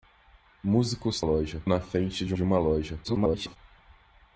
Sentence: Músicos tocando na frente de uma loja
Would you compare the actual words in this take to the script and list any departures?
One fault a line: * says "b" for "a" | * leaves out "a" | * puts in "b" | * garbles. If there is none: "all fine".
* says "loja" for "tocando"
* puts in "de"
* garbles